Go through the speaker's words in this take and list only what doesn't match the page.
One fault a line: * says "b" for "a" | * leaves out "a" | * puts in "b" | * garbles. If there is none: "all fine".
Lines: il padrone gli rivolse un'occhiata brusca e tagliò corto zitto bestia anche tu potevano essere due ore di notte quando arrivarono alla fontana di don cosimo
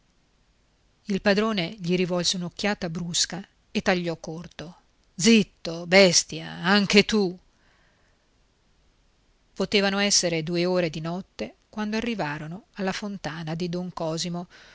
all fine